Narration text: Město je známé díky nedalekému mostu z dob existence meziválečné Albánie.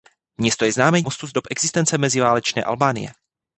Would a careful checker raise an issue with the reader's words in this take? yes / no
yes